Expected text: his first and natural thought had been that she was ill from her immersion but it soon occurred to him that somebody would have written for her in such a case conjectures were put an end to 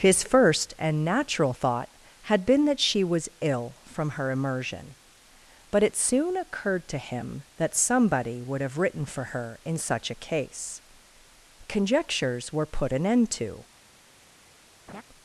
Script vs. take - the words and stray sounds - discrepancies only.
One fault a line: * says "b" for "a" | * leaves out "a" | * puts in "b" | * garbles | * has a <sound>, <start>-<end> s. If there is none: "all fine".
* has a laugh, 14.9-15.0 s